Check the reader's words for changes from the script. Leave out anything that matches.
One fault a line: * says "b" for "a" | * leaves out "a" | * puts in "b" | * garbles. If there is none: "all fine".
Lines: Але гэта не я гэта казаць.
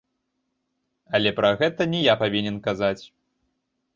* puts in "пра"
* says "павінен" for "гэта"